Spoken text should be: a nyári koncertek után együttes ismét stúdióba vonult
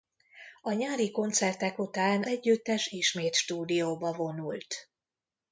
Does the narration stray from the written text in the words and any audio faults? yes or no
no